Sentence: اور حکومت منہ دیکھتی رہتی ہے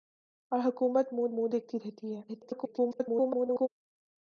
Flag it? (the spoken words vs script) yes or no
yes